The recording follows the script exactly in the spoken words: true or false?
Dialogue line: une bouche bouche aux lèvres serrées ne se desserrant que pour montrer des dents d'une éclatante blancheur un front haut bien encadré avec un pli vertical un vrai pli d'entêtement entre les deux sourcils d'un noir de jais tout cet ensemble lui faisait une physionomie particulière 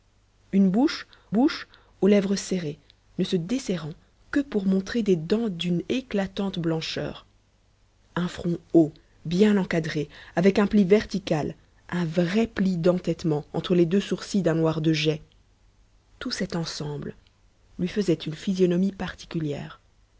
true